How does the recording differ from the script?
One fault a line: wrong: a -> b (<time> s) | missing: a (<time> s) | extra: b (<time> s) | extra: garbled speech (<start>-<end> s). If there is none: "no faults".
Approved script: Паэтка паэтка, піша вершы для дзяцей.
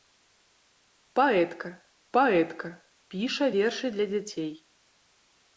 no faults